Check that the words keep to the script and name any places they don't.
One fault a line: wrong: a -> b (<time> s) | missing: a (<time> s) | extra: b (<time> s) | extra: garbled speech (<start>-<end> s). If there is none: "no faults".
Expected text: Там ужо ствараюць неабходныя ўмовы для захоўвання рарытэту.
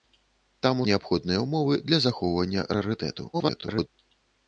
missing: ужо ствараюць (0.8 s)
extra: garbled speech (3.3-3.9 s)